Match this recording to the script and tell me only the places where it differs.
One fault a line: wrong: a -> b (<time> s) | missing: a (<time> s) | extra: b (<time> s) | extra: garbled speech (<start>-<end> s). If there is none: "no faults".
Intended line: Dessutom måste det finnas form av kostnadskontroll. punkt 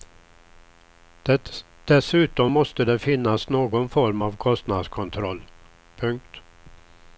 extra: någon (3.5 s)